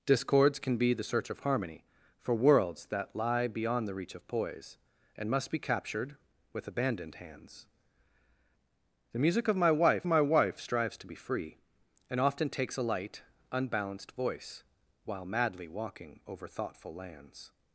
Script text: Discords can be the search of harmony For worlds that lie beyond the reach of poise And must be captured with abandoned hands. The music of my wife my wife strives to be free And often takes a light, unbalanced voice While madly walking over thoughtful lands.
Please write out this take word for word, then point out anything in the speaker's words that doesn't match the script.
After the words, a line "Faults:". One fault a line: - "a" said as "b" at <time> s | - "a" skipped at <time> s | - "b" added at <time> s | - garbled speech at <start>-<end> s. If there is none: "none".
Discords can be the search of harmony For worlds that lie beyond the reach of poise And must be captured with abandoned hands. The music of my wife my wife strives to be free And often takes a light, unbalanced voice While madly walking over thoughtful lands.
Faults:
none